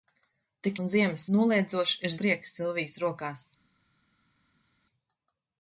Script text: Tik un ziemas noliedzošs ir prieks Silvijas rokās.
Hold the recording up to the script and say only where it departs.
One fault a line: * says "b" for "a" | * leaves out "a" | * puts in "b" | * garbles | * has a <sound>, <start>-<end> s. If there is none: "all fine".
all fine